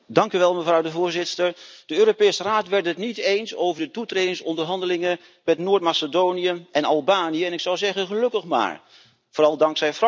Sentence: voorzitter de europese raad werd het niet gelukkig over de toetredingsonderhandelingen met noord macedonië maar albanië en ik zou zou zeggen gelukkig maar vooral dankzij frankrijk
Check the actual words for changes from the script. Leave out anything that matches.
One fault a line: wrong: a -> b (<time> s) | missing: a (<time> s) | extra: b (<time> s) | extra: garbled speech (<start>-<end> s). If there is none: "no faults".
wrong: gelukkig -> eens (3.2 s)
wrong: maar -> en (6.7 s)
missing: zou (7.8 s)